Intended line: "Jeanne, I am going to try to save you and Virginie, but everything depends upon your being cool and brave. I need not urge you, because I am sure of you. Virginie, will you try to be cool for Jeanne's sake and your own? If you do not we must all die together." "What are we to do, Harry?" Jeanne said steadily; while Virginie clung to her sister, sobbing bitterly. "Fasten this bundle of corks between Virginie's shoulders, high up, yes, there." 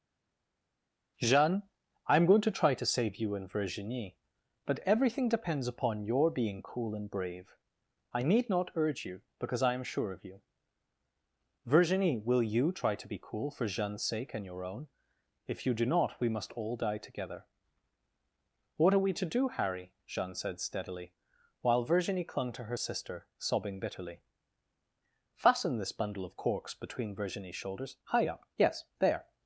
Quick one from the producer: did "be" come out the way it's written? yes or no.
yes